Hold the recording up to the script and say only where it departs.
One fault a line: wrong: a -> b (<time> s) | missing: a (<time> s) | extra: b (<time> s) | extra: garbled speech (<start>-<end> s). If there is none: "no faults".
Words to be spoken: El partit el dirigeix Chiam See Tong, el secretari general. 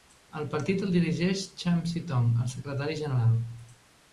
no faults